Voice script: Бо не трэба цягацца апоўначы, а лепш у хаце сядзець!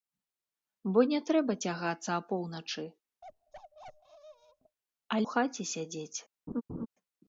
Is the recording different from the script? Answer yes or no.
yes